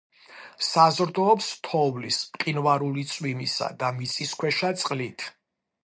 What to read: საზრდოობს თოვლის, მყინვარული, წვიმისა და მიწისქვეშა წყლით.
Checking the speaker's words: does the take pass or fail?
pass